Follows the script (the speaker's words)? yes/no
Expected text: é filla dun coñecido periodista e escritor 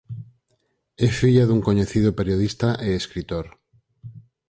yes